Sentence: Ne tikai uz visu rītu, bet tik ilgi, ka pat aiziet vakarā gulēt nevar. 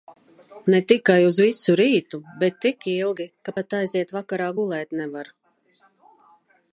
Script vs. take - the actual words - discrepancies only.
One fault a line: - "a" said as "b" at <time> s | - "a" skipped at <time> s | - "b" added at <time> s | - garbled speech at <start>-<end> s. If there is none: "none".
none